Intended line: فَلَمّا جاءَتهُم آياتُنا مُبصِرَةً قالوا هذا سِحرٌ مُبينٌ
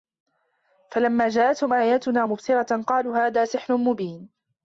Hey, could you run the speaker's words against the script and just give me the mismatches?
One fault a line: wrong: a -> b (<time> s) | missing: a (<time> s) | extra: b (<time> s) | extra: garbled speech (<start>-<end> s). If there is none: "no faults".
no faults